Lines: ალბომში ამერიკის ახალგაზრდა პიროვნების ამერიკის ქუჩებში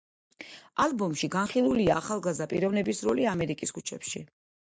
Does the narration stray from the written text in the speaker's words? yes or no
yes